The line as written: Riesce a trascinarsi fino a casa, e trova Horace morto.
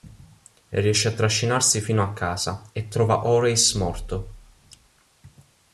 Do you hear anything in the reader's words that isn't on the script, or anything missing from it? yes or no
no